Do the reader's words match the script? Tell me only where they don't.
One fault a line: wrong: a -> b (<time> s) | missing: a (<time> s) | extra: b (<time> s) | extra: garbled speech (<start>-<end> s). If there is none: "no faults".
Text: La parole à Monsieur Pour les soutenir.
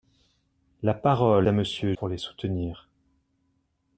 no faults